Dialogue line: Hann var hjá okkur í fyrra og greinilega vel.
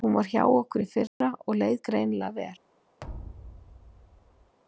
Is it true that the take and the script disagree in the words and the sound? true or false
true